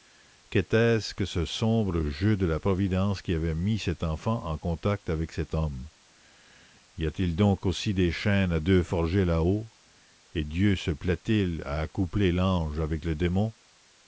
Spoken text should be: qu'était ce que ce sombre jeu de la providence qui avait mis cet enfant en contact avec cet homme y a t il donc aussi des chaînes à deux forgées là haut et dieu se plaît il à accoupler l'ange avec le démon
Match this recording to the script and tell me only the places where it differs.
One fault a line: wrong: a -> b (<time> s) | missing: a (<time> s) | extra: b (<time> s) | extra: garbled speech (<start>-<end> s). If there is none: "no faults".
no faults